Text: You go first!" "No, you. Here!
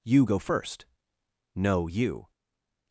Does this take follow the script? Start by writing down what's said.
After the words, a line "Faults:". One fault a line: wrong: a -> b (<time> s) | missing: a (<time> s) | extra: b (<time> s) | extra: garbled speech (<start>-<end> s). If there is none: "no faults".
You go first!" "No, you!
Faults:
missing: Here (2.3 s)